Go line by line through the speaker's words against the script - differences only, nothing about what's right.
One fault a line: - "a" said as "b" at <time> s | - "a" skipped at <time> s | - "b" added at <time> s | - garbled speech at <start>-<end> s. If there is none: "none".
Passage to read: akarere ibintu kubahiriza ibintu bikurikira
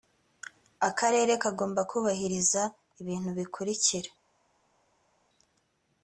- "ibintu" said as "kagomba" at 1.4 s